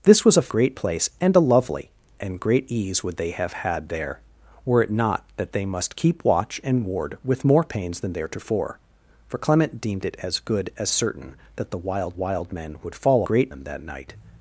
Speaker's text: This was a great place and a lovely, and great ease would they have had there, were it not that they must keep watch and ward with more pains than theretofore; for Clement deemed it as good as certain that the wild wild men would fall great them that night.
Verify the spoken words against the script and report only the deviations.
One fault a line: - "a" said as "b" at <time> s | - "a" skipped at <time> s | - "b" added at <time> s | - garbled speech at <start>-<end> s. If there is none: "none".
none